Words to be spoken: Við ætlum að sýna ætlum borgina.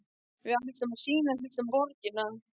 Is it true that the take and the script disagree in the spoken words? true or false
false